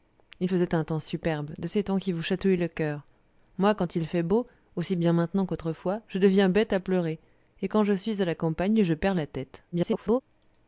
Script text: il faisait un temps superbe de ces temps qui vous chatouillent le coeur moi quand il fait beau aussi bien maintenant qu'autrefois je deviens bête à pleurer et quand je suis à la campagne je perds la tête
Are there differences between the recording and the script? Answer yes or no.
yes